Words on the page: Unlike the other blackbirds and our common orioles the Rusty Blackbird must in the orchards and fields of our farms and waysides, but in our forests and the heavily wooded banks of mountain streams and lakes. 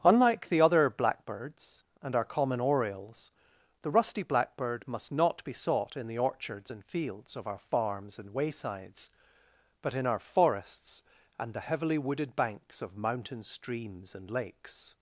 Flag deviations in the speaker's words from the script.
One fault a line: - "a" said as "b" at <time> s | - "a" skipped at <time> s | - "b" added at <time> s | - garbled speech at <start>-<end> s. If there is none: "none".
- "not be sought" added at 5.1 s